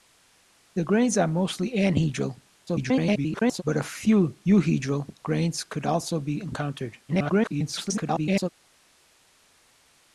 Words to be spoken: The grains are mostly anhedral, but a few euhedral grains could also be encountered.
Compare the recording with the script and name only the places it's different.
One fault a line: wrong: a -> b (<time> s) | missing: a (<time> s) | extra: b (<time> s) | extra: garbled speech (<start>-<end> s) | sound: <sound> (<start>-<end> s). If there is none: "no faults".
extra: garbled speech (2.7-3.6 s)
extra: garbled speech (7.1-8.5 s)